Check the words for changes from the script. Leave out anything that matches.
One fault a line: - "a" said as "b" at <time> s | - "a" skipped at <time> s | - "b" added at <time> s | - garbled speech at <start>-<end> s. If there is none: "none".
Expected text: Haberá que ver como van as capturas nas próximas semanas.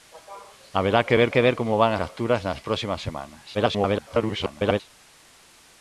- "que ver" added at 1.3 s
- "as" skipped at 1.9 s
- garbled speech at 3.5-4.8 s